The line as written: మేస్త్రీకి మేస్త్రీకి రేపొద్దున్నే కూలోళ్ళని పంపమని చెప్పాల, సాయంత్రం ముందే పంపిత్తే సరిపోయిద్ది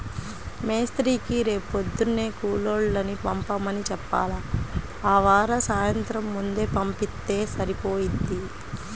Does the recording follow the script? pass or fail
fail